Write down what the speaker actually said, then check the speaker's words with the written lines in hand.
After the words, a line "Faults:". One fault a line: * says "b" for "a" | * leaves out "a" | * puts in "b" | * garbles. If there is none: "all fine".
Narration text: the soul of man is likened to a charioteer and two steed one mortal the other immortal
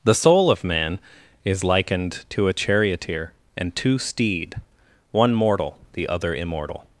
the soul of man is likened to a charioteer and two steed one mortal the other immortal
Faults:
all fine